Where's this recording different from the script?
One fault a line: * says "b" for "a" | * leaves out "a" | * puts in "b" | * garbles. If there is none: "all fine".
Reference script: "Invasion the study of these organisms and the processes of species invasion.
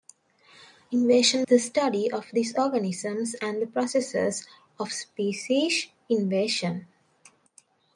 all fine